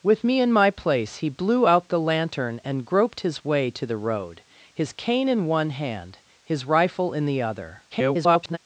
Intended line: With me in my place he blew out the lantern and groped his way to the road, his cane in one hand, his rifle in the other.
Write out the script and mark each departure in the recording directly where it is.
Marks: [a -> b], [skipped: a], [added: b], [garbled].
With me in my place he blew out the lantern and groped his way to the road, his cane in one hand, his rifle in the other. [garbled]